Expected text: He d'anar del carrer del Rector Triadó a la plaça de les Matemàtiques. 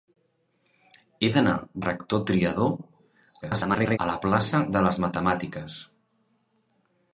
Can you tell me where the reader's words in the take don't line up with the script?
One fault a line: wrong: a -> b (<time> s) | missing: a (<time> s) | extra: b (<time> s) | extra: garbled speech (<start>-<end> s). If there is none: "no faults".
missing: del carrer del (1.5 s)
extra: garbled speech (3.4-4.0 s)